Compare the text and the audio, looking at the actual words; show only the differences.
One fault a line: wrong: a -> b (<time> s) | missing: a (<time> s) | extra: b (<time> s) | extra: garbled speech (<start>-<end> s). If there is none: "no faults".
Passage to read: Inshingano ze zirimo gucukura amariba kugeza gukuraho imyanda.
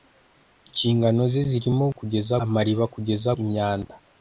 wrong: gucukura -> kugeza (2.0 s)
missing: gukuraho (3.3 s)